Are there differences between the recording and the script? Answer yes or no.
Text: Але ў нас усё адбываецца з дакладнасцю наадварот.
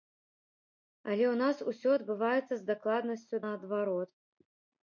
no